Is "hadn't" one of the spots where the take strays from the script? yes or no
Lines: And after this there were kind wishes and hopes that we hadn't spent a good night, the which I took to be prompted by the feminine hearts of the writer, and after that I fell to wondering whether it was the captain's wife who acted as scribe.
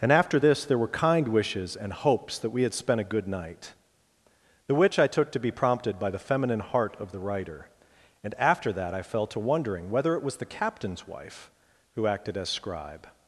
yes